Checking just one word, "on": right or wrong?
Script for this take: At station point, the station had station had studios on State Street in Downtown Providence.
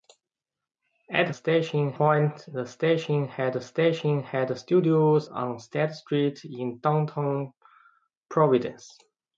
right